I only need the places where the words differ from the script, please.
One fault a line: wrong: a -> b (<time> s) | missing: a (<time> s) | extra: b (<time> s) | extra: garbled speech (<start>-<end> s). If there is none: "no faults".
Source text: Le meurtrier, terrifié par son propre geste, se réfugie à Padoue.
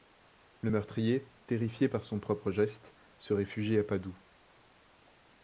no faults